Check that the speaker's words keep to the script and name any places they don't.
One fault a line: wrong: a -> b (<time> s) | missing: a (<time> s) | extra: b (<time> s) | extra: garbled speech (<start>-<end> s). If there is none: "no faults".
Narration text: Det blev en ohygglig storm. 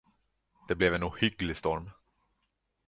no faults